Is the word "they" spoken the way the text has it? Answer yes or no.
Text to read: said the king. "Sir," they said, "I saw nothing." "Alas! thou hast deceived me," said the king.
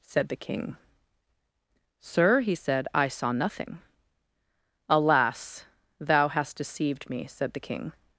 no